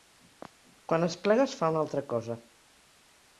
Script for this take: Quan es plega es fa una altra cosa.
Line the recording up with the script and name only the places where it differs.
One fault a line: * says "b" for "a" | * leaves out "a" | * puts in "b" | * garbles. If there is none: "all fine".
all fine